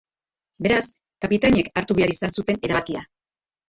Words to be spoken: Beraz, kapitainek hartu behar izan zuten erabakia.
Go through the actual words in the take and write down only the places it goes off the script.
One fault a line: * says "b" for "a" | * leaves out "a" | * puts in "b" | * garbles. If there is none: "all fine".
all fine